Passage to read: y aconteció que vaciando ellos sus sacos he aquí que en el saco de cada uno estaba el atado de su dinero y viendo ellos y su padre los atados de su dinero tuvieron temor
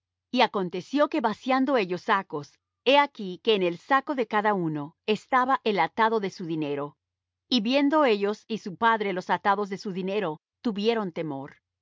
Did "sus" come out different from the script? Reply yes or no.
yes